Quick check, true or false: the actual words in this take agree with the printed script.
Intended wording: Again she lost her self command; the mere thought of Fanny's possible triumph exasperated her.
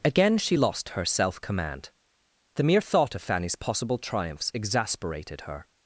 false